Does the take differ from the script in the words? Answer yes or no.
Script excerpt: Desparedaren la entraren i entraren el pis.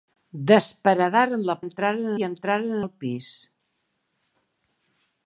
no